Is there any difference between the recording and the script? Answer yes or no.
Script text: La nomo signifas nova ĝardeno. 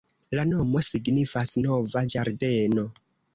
no